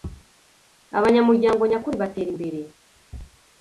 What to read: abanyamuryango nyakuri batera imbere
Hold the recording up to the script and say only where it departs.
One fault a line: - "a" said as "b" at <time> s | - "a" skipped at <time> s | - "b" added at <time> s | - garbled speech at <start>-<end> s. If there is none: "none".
none